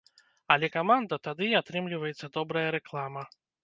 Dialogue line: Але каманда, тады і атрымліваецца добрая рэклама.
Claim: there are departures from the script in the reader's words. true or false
false